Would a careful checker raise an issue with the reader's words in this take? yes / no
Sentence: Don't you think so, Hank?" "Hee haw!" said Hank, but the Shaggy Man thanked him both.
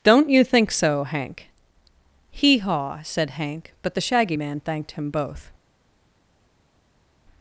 no